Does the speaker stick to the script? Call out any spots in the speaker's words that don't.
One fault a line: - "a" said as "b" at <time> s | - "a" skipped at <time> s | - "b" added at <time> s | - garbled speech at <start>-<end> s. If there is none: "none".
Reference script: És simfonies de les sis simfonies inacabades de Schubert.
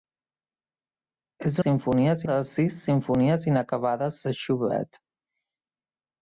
none